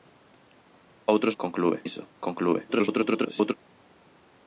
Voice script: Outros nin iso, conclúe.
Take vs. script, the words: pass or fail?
fail